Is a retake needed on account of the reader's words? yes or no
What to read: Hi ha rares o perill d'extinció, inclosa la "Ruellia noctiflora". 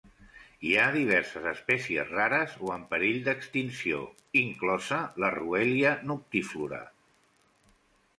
yes